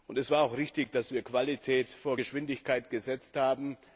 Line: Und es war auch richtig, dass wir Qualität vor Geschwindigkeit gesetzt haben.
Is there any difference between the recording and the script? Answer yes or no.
no